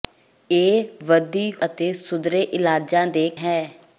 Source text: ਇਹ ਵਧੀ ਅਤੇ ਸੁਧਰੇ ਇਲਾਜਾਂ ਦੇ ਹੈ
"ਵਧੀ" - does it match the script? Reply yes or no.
yes